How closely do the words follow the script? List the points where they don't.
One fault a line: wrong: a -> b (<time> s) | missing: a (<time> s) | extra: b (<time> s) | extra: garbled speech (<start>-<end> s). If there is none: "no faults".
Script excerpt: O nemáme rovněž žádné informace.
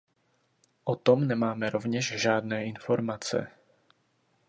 extra: tom (0.9 s)